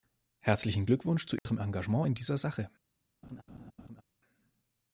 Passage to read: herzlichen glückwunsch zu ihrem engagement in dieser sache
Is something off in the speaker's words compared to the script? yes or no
no